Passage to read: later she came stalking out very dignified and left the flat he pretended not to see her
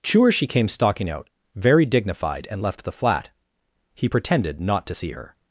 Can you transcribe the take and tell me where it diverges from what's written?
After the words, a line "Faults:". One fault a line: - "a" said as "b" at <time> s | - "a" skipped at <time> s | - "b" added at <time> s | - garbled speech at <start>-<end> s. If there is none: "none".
chewer she came stalking out very dignified and left the flat he pretended not to see her
Faults:
- "later" said as "chewer" at 0.0 s